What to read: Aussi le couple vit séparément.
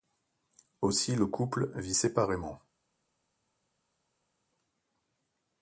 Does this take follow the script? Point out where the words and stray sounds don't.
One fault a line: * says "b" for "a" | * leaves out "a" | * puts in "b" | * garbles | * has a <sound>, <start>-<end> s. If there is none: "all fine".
all fine